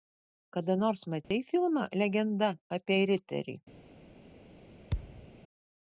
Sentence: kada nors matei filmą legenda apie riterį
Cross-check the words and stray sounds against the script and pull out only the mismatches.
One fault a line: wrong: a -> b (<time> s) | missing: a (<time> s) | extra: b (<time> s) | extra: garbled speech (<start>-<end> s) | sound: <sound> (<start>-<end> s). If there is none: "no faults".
sound: dropout (1.2-1.3 s)
sound: thud (4.9-5.3 s)